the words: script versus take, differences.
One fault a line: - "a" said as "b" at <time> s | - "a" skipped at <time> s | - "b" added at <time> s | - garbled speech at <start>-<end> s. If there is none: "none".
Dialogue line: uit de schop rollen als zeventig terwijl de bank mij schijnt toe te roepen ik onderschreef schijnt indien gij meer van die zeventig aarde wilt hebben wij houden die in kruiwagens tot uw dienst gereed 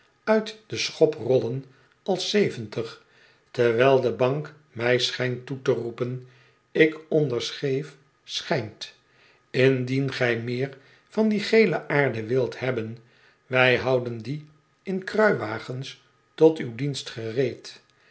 - "zeventig" said as "gele" at 11.4 s